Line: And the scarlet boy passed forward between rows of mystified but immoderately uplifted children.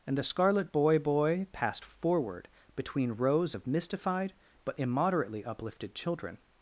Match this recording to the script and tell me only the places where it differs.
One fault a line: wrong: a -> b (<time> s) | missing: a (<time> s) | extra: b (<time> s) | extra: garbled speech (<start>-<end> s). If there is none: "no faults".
extra: boy (1.0 s)